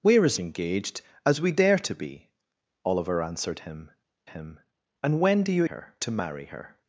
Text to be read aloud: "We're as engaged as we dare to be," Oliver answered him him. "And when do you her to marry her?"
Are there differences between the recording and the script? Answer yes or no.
no